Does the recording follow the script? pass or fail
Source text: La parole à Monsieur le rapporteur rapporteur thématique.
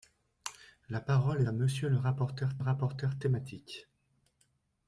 pass